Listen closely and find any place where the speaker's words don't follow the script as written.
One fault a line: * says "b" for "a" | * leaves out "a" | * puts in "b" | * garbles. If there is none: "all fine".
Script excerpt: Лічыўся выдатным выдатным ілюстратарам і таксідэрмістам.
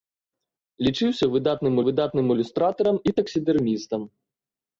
all fine